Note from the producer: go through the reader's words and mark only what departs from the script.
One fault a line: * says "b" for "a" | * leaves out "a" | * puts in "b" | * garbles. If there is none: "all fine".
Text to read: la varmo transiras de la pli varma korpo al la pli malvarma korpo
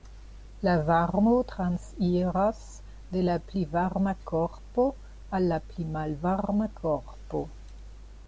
all fine